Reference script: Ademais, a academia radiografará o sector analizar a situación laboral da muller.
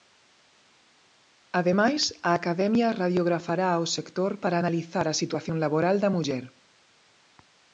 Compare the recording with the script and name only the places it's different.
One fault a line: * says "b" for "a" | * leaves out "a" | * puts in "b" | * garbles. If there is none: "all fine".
* puts in "para"